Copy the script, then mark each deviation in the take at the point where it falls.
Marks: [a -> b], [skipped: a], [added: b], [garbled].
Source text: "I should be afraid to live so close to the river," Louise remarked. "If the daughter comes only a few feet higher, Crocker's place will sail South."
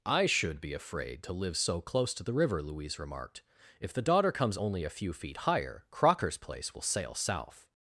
"I should be afraid to live so close to the river," Louise remarked. "If the daughter comes only a few feet higher, Crocker's place will sail South."